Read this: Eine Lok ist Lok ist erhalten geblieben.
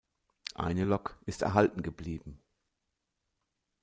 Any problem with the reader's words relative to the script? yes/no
yes